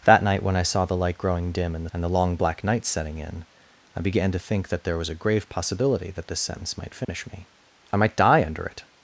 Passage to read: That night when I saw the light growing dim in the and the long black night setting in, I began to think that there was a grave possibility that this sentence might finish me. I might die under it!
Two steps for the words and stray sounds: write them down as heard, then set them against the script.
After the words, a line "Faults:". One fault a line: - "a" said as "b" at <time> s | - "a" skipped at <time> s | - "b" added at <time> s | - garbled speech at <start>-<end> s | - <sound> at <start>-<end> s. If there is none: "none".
That night when I saw the light growing dim in the and the long black night setting in, I began to think that there was a grave possibility that this sentence might finish me. I might die under it!
Faults:
- dropout at 7.0-7.1 s